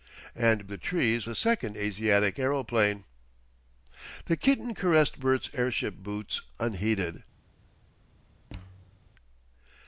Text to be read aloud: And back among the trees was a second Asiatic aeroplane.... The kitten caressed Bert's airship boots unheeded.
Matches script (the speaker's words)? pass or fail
fail